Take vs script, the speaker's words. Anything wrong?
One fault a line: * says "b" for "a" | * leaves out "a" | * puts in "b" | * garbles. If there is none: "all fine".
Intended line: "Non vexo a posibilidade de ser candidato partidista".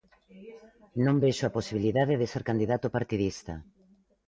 all fine